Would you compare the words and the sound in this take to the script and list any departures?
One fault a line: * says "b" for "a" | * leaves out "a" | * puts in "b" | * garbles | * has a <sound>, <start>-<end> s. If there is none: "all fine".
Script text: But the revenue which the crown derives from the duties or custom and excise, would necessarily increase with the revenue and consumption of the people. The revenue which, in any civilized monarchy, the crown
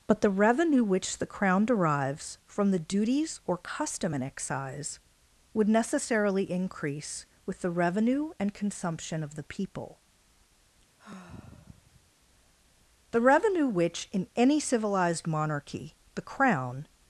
* has a sigh, 11.0-12.1 s